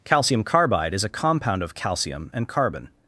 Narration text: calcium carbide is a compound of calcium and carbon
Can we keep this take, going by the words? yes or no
yes